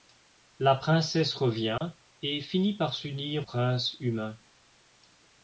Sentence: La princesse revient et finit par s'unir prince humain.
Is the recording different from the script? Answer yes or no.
no